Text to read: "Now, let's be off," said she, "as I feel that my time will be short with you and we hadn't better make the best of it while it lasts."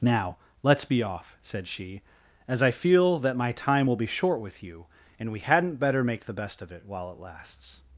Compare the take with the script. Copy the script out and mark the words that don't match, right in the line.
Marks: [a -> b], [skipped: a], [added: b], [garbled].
"Now, let's be off," said she, "as I feel that my time will be short with you and we hadn't better make the best of it while it lasts."